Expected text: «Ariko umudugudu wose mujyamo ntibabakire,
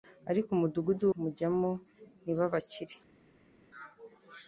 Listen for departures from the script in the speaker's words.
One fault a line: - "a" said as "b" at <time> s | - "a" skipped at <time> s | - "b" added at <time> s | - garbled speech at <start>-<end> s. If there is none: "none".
- "wose" skipped at 1.1 s